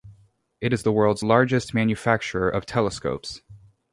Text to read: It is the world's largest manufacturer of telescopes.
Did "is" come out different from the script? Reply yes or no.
no